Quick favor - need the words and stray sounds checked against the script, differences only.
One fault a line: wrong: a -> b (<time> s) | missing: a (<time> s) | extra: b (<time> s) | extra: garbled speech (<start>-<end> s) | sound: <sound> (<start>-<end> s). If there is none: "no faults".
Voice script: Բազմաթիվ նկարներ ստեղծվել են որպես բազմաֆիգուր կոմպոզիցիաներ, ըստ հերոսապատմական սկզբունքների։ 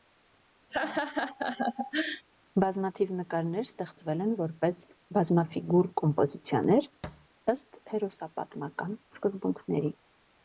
sound: laugh (0.7-2.3 s)
sound: thud (7.0-7.3 s)